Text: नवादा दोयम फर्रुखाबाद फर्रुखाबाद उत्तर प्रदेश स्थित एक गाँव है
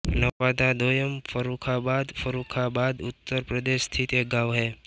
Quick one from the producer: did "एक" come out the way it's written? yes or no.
yes